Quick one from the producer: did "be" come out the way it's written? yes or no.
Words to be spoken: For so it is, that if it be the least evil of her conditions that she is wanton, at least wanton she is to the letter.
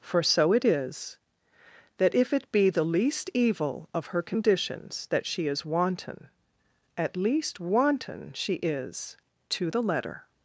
yes